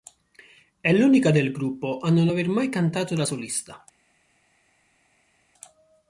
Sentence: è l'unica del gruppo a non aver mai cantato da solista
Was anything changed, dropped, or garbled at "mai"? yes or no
no